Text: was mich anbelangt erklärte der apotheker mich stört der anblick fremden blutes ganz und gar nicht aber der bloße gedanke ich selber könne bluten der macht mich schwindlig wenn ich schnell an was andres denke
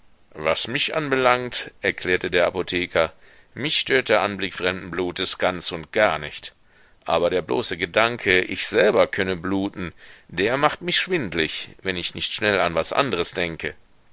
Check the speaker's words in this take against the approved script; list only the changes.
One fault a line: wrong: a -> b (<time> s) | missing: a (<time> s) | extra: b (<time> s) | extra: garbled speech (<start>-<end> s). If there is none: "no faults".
extra: nicht (12.1 s)